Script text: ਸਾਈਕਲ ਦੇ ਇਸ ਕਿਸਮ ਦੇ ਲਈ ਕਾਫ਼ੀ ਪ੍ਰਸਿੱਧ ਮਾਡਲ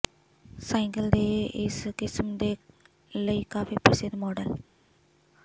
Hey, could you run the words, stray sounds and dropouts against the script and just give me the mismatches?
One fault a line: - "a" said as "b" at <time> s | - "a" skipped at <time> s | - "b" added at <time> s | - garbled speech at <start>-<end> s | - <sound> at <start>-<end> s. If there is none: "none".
none